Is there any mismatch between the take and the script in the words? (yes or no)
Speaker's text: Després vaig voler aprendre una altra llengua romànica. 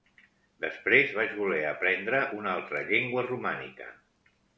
no